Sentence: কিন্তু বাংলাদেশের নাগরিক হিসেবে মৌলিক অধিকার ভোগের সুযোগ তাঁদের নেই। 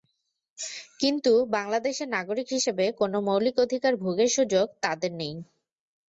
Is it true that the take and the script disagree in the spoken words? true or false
true